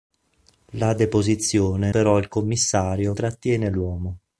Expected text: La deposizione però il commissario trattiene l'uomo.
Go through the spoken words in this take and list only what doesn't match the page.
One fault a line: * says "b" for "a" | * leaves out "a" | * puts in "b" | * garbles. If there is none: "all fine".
all fine